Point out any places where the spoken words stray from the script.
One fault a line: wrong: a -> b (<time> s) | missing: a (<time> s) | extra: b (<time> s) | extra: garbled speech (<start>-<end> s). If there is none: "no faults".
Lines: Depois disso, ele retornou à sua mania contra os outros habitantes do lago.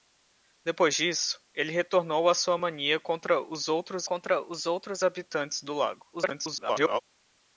extra: contra os outros (4.0 s)
extra: garbled speech (6.1-7.0 s)